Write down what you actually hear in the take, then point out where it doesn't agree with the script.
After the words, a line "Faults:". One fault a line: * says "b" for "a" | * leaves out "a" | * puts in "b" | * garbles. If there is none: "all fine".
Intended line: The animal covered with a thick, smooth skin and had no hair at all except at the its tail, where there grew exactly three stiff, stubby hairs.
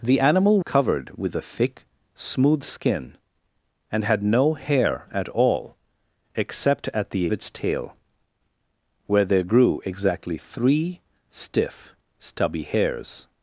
The animal covered with a thick, smooth skin and had no hair at all except at the its tail, where there grew exactly three stiff, stubby hairs.
Faults:
all fine